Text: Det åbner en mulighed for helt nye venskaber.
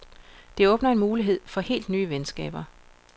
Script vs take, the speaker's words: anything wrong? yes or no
no